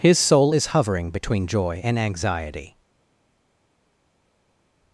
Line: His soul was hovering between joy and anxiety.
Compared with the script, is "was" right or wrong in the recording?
wrong